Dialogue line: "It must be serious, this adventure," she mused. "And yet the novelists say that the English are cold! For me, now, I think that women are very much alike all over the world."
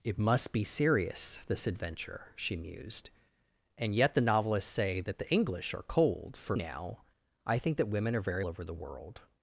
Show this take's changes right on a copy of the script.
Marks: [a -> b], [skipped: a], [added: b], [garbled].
"It must be serious, this adventure," she mused. "And yet the novelists say that the English are cold! For [skipped: me,] now, I think that women are very [skipped: much alike all] over the world."